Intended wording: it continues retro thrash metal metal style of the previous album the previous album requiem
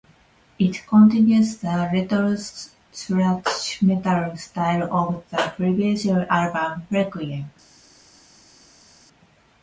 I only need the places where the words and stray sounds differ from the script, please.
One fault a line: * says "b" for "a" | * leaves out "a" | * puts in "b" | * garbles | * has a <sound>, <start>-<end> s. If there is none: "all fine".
* puts in "the"
* leaves out "metal"
* leaves out "the previous album"